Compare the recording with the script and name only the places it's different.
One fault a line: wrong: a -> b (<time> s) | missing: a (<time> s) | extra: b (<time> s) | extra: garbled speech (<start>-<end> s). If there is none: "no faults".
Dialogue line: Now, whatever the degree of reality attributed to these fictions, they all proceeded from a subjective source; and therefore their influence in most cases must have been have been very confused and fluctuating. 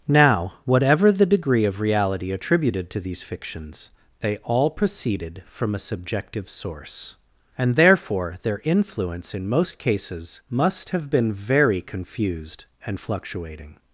missing: have been (11.3 s)